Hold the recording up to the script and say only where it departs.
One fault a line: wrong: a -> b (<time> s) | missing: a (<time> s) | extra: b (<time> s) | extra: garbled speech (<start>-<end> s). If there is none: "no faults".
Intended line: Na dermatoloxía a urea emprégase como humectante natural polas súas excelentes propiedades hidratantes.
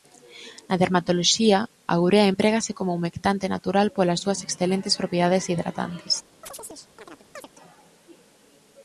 no faults